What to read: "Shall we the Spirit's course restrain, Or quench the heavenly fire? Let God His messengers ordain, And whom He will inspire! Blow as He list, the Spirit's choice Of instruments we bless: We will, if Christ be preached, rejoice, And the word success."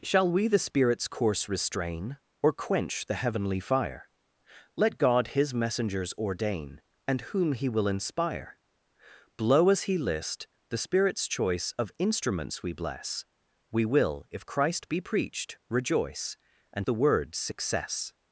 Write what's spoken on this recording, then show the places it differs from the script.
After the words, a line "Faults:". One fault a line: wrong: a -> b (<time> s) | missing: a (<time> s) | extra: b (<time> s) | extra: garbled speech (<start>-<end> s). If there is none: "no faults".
"Shall we the Spirit's course restrain, Or quench the heavenly fire? Let God His messengers ordain, And whom He will inspire! Blow as He list, the Spirit's choice Of instruments we bless: We will, if Christ be preached, rejoice, And the word success."
Faults:
no faults